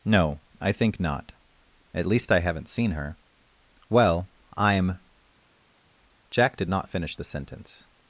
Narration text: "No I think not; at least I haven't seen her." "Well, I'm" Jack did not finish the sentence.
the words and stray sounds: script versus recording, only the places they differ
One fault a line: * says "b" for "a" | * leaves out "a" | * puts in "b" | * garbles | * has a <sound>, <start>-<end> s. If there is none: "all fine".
all fine